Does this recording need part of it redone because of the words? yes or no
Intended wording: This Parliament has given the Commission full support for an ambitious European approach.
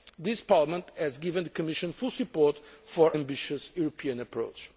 yes